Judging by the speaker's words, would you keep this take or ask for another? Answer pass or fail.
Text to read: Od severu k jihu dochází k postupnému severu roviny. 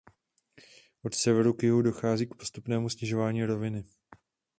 fail